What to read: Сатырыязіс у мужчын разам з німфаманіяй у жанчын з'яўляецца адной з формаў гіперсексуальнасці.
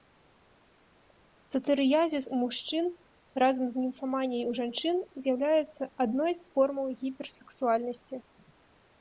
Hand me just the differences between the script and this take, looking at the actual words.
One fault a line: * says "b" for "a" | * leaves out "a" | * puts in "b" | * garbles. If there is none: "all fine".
all fine